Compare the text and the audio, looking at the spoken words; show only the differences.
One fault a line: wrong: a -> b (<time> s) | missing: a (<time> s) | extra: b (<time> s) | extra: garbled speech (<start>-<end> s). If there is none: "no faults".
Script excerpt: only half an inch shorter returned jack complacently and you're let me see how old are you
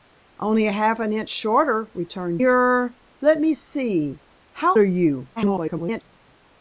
missing: jack complacently and (2.4 s)
missing: old (4.8 s)
extra: garbled speech (5.4-6.0 s)